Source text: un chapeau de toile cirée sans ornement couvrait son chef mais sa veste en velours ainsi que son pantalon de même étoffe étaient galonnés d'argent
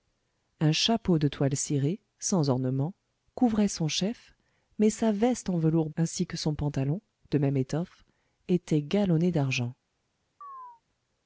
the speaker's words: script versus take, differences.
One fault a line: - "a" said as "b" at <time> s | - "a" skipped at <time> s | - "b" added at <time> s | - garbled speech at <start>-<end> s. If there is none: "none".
none